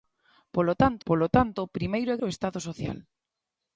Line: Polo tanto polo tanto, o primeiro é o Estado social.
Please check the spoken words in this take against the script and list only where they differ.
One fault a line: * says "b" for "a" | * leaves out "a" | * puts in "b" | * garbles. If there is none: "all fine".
all fine